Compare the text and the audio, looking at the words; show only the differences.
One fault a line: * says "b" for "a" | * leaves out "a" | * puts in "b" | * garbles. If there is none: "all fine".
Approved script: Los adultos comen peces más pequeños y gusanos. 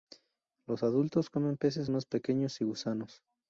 all fine